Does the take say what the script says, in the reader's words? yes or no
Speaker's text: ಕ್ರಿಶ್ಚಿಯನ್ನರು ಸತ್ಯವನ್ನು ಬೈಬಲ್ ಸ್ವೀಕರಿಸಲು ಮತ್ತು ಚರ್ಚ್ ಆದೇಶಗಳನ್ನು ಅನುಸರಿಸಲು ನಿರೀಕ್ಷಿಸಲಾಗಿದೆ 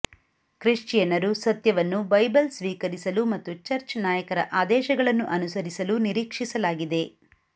no